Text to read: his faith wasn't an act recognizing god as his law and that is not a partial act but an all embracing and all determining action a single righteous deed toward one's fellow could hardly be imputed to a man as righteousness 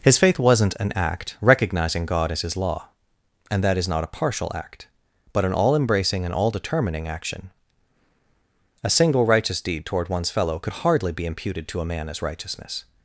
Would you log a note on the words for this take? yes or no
no